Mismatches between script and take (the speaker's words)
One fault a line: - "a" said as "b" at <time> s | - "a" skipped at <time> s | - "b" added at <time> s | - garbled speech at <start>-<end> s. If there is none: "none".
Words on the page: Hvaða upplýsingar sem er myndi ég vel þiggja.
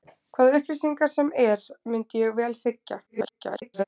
- garbled speech at 3.1-3.8 s